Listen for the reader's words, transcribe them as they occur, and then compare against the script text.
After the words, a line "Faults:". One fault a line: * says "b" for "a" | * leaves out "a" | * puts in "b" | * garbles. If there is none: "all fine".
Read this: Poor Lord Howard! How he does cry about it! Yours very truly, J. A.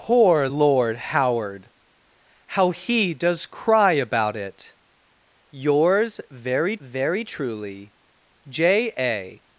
Poor Lord Howard! How he does cry about it! Yours very very truly, J. A.
Faults:
* puts in "very"